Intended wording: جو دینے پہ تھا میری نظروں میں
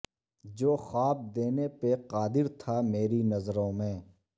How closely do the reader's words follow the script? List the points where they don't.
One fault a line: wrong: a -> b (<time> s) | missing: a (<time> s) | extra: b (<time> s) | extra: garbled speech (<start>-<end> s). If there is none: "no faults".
extra: خواب (0.8 s)
extra: قادر (2.1 s)